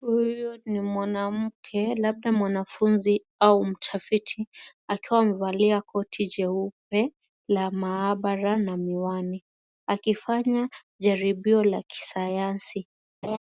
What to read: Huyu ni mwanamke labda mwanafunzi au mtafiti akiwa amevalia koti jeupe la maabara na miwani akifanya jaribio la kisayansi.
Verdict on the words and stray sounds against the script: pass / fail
fail